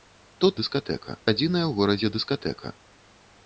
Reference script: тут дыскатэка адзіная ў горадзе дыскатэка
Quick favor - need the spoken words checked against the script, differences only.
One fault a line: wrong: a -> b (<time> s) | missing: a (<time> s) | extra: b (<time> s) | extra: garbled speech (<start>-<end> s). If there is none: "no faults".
no faults